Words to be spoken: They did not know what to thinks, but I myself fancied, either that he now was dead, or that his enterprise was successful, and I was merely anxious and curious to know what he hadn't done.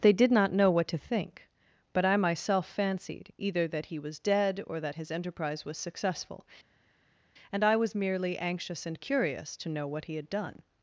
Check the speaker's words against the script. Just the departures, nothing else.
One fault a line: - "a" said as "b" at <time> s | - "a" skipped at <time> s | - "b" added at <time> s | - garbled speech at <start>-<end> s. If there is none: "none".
- "thinks" said as "think" at 1.0 s
- "now" skipped at 4.0 s
- "hadn't" said as "had" at 10.2 s